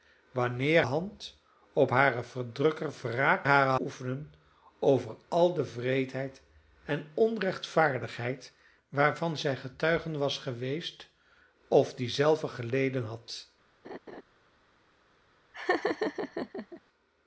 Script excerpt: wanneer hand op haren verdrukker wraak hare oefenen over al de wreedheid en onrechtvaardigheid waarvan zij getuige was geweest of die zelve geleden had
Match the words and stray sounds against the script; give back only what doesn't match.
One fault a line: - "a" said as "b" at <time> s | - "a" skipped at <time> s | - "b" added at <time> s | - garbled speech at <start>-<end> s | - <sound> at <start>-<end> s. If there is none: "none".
- laugh at 13.8-14.2 s
- laugh at 15.5-16.8 s